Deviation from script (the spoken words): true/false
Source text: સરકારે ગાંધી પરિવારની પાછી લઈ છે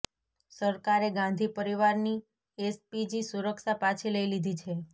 true